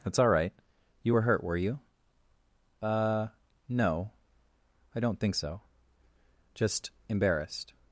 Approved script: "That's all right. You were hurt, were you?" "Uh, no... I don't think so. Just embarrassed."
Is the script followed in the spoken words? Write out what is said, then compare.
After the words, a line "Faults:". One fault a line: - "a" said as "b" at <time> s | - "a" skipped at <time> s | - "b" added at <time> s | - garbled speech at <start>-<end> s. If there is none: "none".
"That's all right. You were hurt, were you?" "Uh, no... I don't think so. Just embarrassed."
Faults:
none